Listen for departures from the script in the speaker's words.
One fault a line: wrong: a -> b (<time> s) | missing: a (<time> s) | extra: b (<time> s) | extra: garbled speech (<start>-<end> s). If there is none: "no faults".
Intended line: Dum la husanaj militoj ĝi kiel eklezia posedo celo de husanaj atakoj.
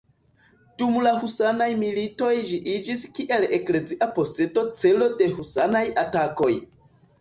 extra: iĝis (2.8 s)